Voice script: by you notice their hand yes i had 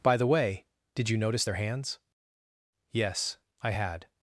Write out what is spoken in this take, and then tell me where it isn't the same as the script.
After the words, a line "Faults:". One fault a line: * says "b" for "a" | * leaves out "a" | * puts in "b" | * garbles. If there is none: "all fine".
by the way did you notice their hands yes i had
Faults:
* puts in "the way did"
* says "hands" for "hand"